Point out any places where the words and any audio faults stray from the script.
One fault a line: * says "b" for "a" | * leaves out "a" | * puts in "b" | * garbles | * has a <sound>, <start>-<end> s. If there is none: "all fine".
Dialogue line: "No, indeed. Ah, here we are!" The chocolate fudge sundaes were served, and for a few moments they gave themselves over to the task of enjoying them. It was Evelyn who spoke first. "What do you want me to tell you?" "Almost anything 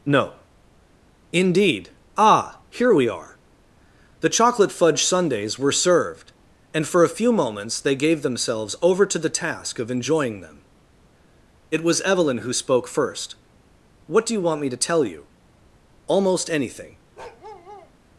* has a bark, 17.2-17.9 s